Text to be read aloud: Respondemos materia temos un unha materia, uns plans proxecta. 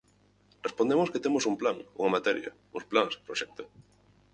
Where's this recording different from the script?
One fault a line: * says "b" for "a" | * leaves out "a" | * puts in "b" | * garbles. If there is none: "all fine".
* says "que" for "materia"
* puts in "plan"